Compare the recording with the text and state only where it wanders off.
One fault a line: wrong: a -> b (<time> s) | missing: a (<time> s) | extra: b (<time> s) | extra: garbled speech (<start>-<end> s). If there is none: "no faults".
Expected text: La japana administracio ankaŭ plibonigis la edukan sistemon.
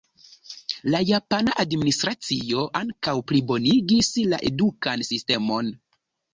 no faults